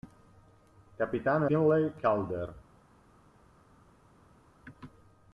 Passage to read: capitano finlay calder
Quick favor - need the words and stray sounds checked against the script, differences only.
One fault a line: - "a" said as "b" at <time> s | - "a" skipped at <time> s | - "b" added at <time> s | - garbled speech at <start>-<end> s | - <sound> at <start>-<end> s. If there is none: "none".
none